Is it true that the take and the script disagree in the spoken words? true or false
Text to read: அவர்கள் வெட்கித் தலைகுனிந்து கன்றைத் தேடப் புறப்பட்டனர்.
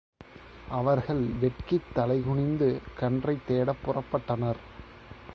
false